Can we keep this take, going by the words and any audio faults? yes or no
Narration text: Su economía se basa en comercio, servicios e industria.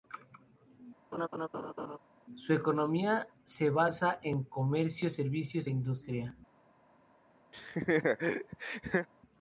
no